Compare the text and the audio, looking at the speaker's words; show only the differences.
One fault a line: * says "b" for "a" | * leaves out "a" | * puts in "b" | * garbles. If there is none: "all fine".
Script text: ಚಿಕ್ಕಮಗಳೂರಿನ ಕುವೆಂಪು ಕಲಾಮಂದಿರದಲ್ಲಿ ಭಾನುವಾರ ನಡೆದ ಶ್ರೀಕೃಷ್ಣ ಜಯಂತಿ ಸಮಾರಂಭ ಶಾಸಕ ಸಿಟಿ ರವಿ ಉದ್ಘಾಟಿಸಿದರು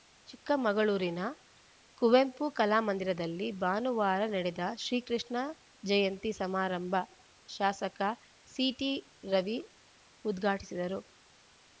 all fine